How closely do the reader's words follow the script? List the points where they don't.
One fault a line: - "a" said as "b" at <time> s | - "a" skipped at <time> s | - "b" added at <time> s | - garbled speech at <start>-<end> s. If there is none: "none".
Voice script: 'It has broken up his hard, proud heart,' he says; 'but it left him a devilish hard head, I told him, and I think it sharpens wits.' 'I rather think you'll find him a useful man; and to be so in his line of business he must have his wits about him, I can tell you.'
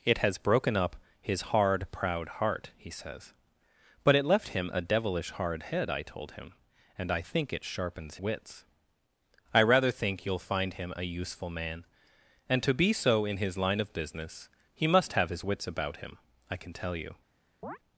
none